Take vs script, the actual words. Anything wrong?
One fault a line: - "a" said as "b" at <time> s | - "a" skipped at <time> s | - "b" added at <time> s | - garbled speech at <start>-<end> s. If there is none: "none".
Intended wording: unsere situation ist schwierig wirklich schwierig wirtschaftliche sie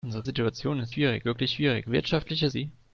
none